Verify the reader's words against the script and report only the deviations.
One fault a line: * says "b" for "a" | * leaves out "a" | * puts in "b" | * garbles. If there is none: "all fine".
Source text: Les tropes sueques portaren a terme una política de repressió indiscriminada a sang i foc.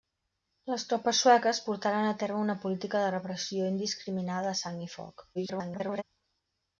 * garbles